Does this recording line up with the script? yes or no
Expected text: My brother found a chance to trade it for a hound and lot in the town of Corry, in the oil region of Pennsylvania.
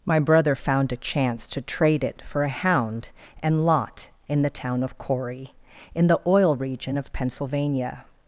yes